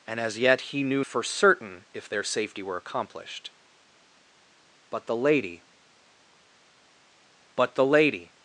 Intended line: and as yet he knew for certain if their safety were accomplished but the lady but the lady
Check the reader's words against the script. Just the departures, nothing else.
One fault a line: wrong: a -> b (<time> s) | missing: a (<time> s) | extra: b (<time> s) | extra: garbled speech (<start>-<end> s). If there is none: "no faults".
no faults